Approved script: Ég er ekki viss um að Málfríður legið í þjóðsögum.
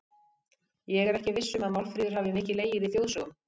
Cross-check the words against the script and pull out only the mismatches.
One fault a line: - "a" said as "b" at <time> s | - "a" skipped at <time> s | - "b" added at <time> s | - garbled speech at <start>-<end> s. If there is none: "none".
- "hafi mikið" added at 2.2 s